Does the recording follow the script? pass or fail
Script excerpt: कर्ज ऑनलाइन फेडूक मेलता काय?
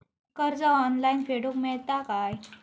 pass